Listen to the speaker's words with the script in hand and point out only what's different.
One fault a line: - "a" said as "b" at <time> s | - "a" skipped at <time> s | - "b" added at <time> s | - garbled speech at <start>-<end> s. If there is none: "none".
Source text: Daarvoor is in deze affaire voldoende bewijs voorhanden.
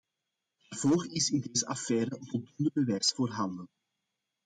none